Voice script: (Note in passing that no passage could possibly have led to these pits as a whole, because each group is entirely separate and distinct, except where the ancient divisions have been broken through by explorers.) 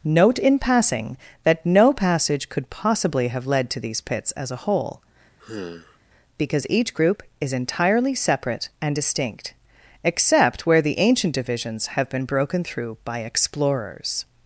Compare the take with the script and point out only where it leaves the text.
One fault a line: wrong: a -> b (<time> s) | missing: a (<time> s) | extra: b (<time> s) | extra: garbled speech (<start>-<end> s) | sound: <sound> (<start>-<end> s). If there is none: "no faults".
sound: sigh (5.4-6.0 s)